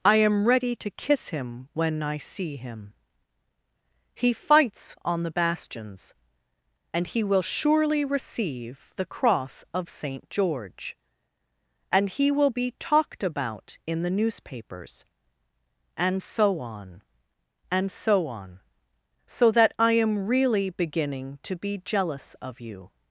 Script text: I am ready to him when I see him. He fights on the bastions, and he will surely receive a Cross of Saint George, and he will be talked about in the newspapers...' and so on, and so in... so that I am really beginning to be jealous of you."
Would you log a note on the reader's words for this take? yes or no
yes